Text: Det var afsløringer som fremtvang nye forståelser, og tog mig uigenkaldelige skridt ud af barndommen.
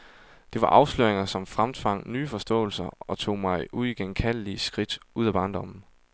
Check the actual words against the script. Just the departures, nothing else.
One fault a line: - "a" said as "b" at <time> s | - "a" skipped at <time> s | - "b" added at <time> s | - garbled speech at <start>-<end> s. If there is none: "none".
none